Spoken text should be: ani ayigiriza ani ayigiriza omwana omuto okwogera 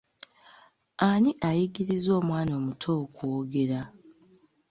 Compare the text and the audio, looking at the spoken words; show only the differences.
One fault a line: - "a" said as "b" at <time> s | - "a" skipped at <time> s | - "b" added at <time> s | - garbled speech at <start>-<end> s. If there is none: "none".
- "ani ayigiriza" skipped at 2.1 s